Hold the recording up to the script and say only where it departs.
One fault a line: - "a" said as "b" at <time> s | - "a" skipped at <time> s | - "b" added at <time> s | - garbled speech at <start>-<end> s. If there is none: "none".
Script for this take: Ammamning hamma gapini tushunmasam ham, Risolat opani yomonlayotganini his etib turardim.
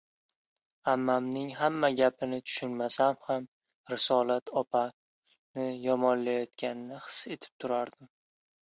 none